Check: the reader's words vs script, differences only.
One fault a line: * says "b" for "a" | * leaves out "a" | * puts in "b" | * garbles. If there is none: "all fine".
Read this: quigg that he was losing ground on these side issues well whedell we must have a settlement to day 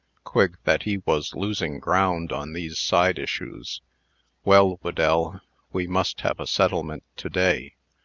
all fine